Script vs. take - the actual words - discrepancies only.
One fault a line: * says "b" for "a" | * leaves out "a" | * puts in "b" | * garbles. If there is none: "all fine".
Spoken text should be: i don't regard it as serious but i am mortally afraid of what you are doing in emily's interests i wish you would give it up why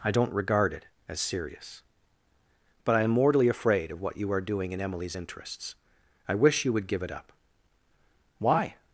all fine